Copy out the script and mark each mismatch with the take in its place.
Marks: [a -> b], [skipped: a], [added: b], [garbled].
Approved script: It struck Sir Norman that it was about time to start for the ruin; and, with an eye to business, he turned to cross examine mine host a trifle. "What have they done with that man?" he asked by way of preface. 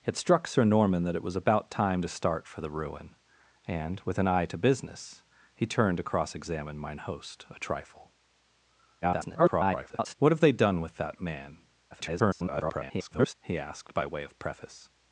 It struck Sir Norman that it was about time to start for the ruin; and, with an eye to business, he turned to cross examine mine host a trifle. [garbled] "What have they done with that man?" [garbled] he asked by way of preface.